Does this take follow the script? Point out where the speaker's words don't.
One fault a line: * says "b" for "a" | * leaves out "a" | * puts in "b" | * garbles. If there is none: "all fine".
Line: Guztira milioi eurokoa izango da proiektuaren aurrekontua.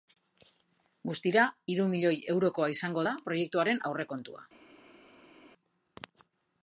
* puts in "hiru"